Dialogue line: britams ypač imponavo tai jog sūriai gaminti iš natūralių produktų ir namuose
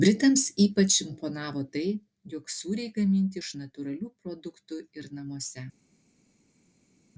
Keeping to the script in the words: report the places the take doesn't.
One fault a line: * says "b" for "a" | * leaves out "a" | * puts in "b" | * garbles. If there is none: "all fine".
all fine